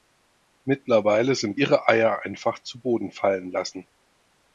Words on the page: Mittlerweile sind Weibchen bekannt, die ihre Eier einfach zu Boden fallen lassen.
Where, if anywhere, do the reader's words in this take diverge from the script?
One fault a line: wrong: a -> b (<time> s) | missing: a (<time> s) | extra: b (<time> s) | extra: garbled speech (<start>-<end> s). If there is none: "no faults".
missing: Weibchen bekannt die (1.6 s)